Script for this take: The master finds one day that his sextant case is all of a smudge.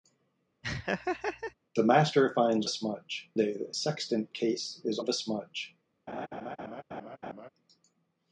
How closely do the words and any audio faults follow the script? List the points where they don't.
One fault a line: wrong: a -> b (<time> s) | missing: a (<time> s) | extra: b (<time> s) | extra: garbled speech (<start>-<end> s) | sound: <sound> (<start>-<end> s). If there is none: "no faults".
sound: laugh (0.6-1.5 s)
wrong: one -> smudge (2.7 s)
missing: his (3.7 s)
missing: all (5.0 s)
sound: laugh (6.1-7.5 s)